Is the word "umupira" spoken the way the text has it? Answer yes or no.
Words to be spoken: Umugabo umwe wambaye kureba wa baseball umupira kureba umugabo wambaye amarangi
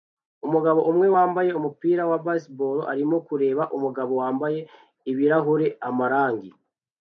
no